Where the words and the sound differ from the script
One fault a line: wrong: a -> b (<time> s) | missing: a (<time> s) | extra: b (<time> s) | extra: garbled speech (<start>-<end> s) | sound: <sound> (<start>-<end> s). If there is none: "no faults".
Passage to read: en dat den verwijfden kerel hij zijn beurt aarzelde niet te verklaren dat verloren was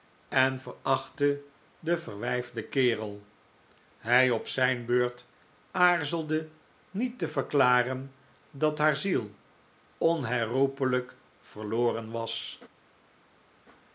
wrong: dat -> verachtte (0.6 s)
extra: op (4.3 s)
extra: haar ziel onherroepelijk (8.8 s)